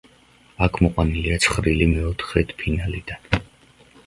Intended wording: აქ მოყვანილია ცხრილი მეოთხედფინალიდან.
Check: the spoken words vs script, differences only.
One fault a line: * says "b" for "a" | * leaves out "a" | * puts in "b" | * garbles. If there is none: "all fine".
all fine